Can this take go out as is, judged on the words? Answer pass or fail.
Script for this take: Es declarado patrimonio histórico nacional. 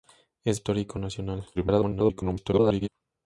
fail